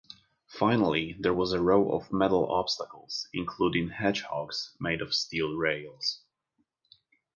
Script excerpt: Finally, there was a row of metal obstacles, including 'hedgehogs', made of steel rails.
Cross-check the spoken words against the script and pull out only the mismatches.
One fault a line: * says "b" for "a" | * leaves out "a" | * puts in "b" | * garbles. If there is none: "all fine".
all fine